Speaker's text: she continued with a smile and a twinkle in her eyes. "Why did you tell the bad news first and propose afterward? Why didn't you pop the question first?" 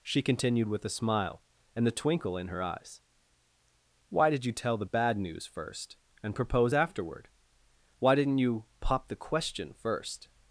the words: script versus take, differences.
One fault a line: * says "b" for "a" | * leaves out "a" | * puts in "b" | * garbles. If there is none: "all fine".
* says "the" for "a"